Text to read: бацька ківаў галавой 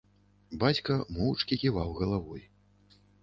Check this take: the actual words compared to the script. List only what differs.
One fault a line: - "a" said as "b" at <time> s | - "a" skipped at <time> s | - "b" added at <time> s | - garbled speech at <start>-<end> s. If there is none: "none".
- "моўчкі" added at 1.2 s